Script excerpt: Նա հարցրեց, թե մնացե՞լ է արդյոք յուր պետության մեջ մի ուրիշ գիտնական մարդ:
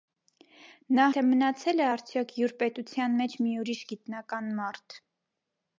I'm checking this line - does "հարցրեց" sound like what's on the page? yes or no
no